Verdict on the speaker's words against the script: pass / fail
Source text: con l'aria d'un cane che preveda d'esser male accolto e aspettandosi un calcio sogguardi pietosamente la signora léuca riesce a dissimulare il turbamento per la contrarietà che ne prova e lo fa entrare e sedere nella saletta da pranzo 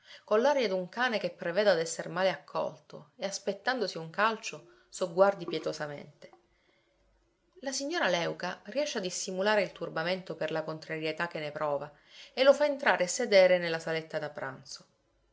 pass